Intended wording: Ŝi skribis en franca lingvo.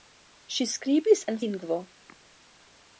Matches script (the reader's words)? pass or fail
fail